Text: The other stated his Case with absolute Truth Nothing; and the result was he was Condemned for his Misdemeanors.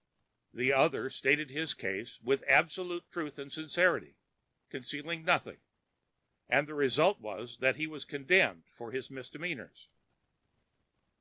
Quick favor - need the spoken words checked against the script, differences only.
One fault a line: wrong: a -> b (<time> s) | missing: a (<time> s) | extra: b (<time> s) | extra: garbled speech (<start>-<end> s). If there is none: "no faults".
extra: and Sincerity concealing (3.4 s)
extra: that (7.6 s)